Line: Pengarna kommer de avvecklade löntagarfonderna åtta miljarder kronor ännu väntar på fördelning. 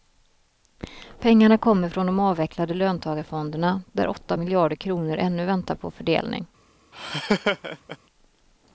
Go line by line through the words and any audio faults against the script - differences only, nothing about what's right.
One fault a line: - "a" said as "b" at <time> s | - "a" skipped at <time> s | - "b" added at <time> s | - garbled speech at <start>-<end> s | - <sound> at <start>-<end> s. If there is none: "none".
- "från" added at 1.9 s
- "där" added at 3.9 s
- laugh at 6.9-8.0 s